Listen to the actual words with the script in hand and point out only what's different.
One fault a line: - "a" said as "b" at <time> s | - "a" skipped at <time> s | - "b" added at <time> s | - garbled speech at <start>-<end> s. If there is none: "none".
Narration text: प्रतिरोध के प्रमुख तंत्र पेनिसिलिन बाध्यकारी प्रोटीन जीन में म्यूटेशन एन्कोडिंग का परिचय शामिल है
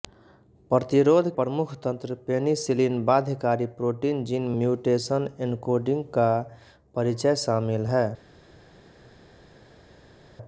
- "के" skipped at 1.3 s
- "में" skipped at 4.5 s